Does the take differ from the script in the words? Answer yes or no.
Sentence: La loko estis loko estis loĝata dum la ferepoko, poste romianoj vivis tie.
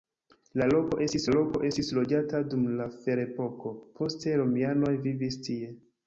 no